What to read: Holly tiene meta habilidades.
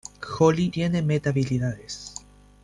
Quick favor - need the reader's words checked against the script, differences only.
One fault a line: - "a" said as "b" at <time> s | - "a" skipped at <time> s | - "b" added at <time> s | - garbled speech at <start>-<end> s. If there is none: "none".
none